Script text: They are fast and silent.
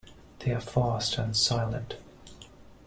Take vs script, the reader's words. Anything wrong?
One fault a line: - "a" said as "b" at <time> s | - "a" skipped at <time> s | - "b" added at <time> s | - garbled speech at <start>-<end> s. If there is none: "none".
none